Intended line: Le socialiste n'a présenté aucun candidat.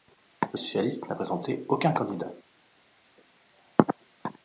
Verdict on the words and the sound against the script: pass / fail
pass